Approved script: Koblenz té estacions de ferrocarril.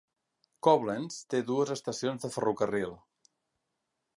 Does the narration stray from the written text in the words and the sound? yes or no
yes